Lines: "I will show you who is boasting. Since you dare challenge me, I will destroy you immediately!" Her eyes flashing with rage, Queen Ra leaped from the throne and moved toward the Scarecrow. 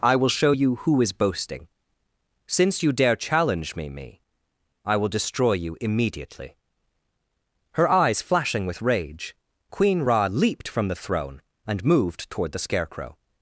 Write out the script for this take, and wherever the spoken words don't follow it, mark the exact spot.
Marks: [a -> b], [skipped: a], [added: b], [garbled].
"I will show you who is boasting. Since you dare challenge me, [added: me] I will destroy you immediately!" Her eyes flashing with rage, Queen Ra leaped from the throne and moved toward the Scarecrow.